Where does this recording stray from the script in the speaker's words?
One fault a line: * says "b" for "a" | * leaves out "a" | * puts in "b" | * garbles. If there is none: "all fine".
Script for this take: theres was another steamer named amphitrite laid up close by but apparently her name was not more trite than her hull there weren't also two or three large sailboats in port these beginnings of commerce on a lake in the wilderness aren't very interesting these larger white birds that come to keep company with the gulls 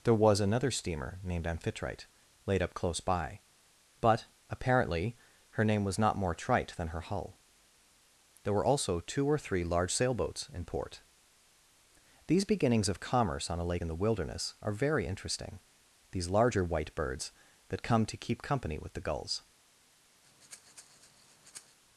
* says "there" for "theres"
* says "were" for "weren't"
* says "are" for "aren't"